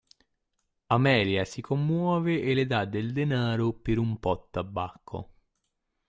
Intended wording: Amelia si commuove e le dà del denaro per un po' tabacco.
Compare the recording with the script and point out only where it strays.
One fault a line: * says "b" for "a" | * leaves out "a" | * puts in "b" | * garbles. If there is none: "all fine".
all fine